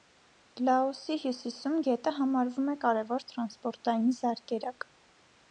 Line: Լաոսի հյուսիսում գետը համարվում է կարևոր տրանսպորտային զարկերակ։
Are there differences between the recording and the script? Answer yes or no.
no